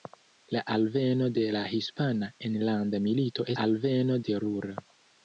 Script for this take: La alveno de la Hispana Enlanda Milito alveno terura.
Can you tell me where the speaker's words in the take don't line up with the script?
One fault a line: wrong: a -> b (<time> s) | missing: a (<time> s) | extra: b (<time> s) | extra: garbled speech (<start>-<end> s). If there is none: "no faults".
no faults